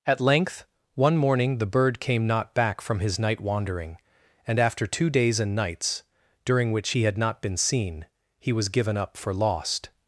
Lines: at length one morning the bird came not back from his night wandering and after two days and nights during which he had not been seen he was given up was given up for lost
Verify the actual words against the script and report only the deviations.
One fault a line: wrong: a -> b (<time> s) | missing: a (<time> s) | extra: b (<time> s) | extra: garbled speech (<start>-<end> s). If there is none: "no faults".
missing: was given up (9.2 s)